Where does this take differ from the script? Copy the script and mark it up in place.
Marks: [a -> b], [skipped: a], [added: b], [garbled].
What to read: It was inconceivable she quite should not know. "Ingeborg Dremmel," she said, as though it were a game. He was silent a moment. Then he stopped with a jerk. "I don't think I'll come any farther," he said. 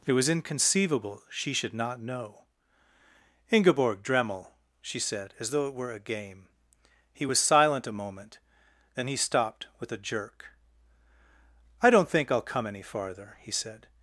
It was inconceivable she [skipped: quite] should not know. "Ingeborg Dremmel," she said, as though it were a game. He was silent a moment. Then he stopped with a jerk. "I don't think I'll come any farther," he said.